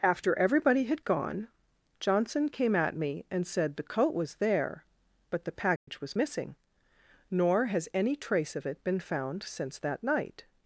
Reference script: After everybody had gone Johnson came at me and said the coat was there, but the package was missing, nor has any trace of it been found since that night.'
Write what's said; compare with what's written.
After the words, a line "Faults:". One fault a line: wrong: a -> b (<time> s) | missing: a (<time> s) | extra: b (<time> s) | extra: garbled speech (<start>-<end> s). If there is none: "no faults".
After everybody had gone Johnson came at me and said the coat was there, but the package was missing, nor has any trace of it been found since that night.'
Faults:
no faults